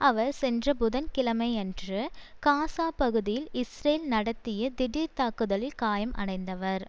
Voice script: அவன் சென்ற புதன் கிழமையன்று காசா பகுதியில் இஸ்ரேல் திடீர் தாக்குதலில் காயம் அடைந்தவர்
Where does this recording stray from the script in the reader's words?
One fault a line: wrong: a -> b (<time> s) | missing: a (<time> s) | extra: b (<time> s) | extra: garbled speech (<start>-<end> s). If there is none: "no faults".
wrong: அவன் -> அவர் (0.0 s)
extra: நடத்திய (4.1 s)